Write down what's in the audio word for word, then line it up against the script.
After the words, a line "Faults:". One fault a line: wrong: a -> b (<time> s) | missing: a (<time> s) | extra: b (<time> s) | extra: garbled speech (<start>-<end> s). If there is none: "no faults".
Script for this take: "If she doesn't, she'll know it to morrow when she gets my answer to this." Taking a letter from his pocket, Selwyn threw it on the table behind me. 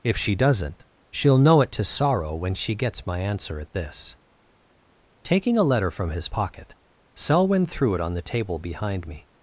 "If she doesn't, she'll know it to sorrow when she gets my answer at this." Taking a letter from his pocket, Selwyn threw it on the table behind me.
Faults:
wrong: morrow -> sorrow (1.8 s)
wrong: to -> at (3.6 s)